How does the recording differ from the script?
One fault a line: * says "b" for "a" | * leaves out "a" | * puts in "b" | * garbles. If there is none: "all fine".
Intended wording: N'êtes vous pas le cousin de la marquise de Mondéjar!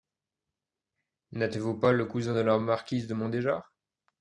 all fine